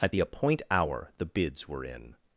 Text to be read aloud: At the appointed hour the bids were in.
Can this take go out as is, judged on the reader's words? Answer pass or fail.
fail